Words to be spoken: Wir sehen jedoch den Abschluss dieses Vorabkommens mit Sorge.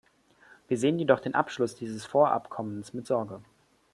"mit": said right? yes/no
yes